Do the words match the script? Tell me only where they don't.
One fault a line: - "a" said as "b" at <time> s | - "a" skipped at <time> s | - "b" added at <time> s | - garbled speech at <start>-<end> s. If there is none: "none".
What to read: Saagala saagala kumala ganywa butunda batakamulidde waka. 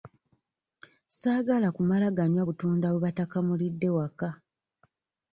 - "saagala" skipped at 1.7 s
- "bwe" added at 2.9 s